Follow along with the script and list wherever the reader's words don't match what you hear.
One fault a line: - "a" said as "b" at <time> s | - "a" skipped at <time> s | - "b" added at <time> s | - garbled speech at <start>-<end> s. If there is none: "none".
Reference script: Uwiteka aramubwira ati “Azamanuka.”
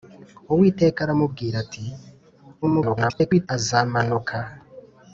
- garbled speech at 2.6-3.5 s